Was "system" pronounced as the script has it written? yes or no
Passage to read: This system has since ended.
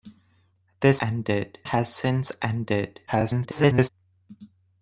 no